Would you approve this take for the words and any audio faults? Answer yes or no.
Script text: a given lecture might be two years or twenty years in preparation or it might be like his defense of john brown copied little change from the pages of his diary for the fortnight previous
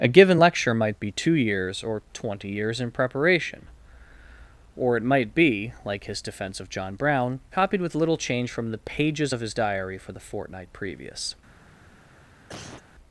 no